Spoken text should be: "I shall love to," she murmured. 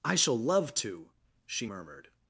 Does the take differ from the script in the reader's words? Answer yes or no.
no